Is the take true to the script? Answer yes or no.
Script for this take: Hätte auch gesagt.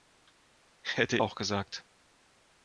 yes